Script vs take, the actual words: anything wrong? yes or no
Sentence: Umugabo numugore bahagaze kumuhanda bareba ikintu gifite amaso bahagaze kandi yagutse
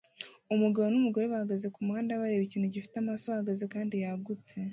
no